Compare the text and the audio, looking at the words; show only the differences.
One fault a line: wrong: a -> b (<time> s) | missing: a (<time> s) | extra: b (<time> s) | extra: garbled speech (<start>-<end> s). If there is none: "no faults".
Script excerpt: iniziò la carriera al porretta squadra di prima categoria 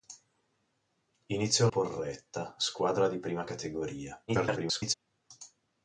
missing: la carriera al (1.7 s)
extra: garbled speech (4.3-4.9 s)